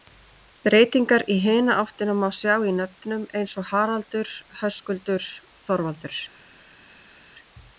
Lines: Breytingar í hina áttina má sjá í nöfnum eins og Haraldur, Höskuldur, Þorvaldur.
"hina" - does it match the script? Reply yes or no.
yes